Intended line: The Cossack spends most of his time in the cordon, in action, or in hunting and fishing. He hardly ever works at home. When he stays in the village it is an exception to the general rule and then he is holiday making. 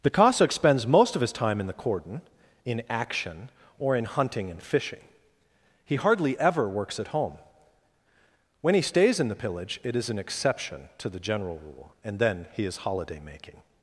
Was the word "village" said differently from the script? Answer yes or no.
yes